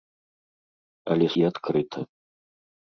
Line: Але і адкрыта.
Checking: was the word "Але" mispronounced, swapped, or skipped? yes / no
no